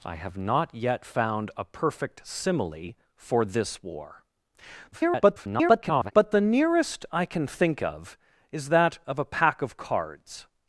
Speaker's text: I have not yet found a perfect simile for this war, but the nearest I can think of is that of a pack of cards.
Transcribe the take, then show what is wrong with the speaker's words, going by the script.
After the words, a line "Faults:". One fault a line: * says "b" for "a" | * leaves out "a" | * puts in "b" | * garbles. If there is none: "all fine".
I have not yet found a perfect simile for this war, [garbled] but the nearest I can think of is that of a pack of cards.
Faults:
* garbles